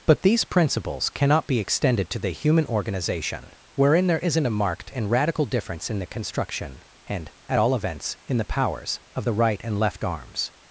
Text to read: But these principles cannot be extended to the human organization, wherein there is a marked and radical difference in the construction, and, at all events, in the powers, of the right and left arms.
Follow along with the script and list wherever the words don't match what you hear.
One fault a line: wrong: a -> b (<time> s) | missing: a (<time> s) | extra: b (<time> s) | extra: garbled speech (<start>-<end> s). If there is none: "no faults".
wrong: is -> isn't (4.2 s)